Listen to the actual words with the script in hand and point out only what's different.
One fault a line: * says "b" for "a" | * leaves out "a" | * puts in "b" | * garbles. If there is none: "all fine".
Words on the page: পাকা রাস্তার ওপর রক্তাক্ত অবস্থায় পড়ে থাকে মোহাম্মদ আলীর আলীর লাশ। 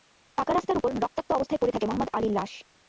* leaves out "আলীর"